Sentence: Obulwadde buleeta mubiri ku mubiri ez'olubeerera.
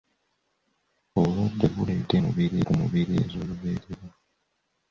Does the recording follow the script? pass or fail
pass